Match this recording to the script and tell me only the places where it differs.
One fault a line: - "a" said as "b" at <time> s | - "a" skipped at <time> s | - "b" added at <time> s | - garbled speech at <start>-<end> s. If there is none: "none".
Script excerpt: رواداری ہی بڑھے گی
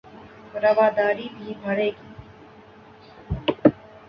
- "ہی" said as "بھی" at 1.4 s